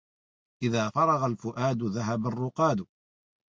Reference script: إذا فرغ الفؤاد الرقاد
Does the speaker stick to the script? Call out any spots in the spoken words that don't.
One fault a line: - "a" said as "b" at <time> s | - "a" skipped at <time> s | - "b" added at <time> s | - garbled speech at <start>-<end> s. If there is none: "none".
- "ذهب" added at 1.8 s